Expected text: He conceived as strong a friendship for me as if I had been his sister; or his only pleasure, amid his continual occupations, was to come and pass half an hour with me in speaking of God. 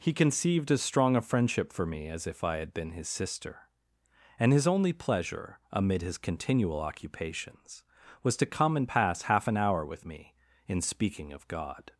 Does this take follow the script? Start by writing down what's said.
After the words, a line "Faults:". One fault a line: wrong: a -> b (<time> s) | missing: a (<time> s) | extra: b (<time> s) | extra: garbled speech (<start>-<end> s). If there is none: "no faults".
He conceived as strong a friendship for me as if I had been his sister; and his only pleasure, amid his continual occupations, was to come and pass half an hour with me in speaking of God.
Faults:
wrong: or -> and (4.4 s)